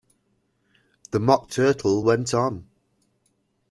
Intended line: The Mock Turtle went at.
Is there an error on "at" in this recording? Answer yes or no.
yes